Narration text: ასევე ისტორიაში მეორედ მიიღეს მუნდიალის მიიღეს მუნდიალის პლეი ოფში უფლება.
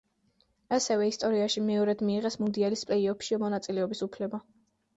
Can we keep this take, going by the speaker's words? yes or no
no